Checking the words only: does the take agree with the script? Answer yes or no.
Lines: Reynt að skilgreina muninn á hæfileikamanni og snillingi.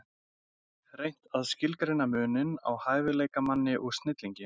yes